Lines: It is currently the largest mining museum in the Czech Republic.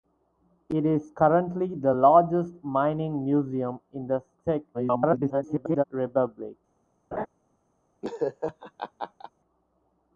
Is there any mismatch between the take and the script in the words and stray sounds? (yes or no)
yes